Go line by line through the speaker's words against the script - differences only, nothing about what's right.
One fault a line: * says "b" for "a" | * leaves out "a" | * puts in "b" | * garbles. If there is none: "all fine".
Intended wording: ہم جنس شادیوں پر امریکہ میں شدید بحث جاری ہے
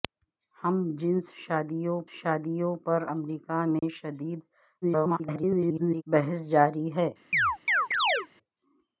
* puts in "شادیوں"
* garbles